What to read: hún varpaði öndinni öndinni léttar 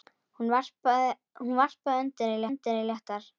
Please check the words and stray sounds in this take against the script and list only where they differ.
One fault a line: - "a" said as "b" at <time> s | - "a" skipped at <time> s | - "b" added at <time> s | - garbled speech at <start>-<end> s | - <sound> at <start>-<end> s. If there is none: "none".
none